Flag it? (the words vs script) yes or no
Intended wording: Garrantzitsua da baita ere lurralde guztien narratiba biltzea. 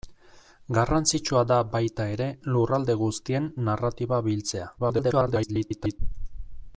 yes